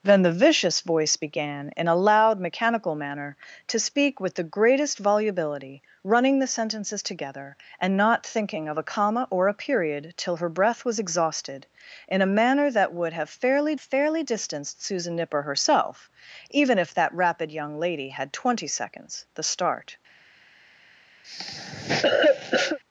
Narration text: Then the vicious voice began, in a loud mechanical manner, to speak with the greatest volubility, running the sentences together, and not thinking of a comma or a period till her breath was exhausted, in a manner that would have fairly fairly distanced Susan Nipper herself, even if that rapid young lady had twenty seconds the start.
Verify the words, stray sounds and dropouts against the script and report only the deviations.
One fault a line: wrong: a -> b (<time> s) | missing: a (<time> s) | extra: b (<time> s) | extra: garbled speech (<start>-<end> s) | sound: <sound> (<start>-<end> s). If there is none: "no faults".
sound: cough (21.2-22.8 s)